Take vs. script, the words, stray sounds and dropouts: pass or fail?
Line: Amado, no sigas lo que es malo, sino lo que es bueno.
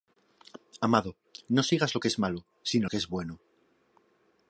fail